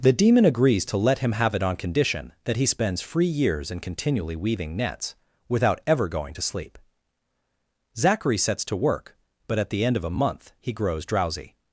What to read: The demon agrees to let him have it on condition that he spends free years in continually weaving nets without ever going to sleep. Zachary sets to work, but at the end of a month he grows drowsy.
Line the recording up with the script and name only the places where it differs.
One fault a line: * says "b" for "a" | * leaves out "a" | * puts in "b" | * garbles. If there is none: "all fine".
all fine